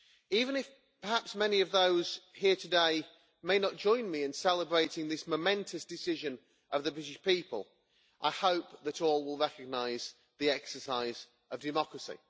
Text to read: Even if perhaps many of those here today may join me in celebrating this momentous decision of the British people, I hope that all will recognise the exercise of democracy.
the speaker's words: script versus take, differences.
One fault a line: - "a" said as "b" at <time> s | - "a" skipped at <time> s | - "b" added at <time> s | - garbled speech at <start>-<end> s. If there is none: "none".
- "not" added at 3.6 s